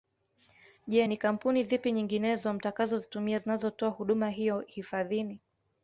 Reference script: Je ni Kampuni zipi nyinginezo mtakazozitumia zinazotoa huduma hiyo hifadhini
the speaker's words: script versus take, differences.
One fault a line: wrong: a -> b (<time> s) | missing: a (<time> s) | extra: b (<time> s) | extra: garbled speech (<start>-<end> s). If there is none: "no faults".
no faults